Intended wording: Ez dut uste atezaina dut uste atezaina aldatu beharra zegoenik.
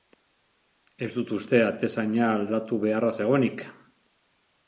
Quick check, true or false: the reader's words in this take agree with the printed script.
false